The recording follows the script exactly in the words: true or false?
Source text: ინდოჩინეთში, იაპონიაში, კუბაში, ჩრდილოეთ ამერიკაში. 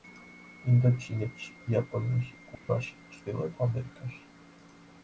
true